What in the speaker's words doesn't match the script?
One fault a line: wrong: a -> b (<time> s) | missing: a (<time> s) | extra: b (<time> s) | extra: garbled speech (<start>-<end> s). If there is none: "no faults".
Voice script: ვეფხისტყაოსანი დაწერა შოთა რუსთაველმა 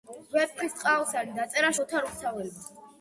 no faults